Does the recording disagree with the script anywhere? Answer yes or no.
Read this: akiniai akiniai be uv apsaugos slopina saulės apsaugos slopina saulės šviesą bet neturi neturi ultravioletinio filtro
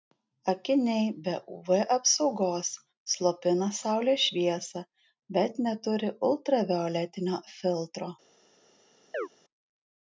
yes